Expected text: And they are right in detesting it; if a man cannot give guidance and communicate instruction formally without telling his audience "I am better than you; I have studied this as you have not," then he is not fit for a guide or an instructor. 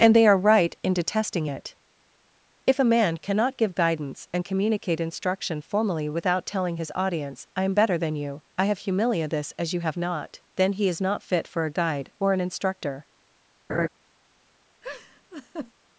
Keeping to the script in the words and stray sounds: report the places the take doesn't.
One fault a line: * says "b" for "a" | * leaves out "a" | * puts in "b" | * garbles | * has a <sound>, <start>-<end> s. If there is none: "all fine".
* says "humilia" for "studied"
* has a laugh, 13.7-13.9 s
* has a laugh, 14.8-15.7 s